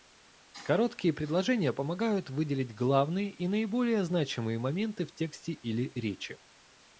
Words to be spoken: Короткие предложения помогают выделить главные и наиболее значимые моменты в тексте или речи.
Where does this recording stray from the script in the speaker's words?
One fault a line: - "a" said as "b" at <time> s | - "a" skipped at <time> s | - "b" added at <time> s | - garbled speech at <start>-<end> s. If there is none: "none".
none